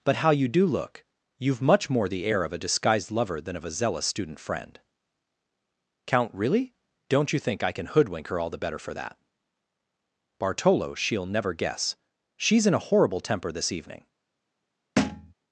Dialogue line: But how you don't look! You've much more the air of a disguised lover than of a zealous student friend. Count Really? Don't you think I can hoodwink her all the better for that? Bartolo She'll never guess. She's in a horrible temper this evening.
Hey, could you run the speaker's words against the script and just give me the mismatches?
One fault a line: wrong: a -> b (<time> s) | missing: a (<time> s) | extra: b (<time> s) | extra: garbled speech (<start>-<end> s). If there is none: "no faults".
wrong: don't -> do (0.5 s)